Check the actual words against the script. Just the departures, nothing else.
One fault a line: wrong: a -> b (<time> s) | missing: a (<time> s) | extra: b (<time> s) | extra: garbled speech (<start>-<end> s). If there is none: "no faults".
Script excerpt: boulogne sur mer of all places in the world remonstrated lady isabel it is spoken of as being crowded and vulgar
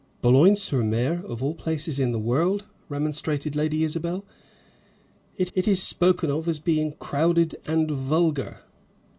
extra: it (5.5 s)